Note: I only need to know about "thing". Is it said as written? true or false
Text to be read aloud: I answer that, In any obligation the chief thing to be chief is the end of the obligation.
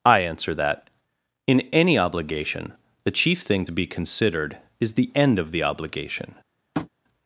true